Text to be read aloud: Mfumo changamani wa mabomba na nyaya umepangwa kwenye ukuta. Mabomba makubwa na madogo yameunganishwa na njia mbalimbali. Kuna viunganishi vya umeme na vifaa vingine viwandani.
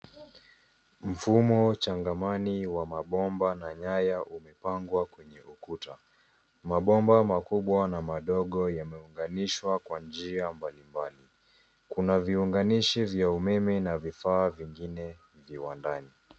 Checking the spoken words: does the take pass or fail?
fail